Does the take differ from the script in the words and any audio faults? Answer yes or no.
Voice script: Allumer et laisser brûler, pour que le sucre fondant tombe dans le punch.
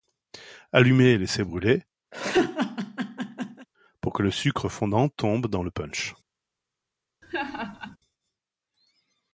yes